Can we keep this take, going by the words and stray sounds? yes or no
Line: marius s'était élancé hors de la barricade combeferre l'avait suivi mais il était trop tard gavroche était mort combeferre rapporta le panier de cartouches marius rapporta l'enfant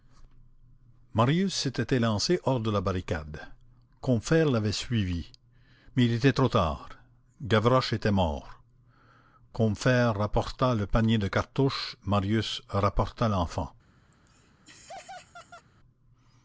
no